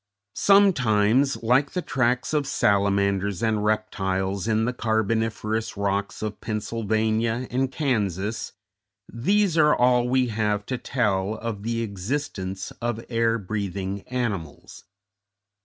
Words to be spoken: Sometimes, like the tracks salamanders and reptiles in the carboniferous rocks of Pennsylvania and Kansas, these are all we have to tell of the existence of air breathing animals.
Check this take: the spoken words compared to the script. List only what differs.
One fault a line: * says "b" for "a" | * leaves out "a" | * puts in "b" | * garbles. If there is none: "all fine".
* puts in "of"